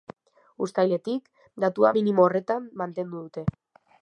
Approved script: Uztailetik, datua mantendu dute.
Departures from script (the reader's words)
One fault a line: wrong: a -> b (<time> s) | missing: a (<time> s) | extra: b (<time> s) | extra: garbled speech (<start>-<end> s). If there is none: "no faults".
extra: minimo horretan (2.0 s)